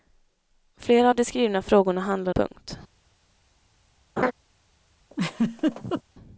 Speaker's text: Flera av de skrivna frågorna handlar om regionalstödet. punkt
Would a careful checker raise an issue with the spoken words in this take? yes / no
yes